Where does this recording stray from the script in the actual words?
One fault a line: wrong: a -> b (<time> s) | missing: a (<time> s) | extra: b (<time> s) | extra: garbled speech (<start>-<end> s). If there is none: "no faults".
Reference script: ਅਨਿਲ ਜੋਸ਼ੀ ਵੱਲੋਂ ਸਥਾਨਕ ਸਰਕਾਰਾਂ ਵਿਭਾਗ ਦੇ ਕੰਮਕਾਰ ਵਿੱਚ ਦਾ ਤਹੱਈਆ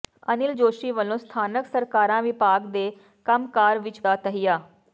no faults